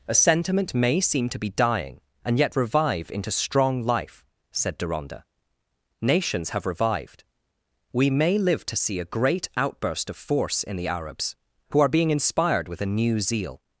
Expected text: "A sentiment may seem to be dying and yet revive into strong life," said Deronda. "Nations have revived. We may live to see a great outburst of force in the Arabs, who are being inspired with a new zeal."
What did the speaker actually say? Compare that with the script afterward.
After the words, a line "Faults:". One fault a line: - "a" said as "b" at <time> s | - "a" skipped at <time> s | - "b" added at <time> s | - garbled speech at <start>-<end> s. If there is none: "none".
"A sentiment may seem to be dying and yet revive into strong life," said Deronda. "Nations have revived. We may live to see a great outburst of force in the Arabs, who are being inspired with a new zeal."
Faults:
none